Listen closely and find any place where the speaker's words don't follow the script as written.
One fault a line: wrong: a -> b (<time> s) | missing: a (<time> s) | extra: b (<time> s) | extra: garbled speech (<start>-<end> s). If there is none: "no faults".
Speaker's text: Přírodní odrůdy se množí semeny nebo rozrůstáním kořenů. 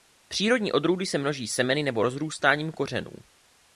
no faults